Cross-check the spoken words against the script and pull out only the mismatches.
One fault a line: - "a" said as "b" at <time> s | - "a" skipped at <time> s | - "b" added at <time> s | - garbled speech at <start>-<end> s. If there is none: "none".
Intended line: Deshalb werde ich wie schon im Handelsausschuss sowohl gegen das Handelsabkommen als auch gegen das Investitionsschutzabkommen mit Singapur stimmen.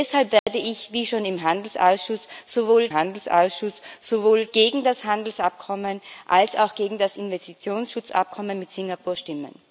- "Handelsausschuss sowohl" added at 2.9 s